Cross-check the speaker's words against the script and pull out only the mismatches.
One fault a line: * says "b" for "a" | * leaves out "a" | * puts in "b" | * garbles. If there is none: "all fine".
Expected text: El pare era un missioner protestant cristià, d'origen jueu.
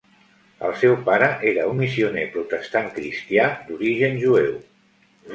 * puts in "seu"